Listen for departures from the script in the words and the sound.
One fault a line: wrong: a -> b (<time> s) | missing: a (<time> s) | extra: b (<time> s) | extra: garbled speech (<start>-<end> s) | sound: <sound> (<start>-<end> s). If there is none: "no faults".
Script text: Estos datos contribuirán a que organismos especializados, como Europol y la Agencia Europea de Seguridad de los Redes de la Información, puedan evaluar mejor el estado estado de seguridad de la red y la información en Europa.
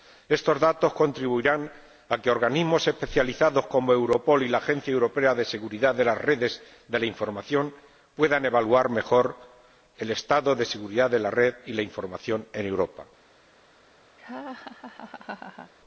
wrong: los -> las (6.0 s)
missing: estado (10.6 s)
sound: laugh (14.2-15.7 s)